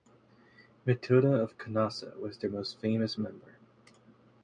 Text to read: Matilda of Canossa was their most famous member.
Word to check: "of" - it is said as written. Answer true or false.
true